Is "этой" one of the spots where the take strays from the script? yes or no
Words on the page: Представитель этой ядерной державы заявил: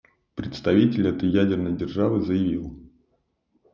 no